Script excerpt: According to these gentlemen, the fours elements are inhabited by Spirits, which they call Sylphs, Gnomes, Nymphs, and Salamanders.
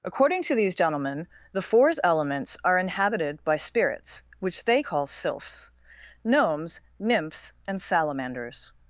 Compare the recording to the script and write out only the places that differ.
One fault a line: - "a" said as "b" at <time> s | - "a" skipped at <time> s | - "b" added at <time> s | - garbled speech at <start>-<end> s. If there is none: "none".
none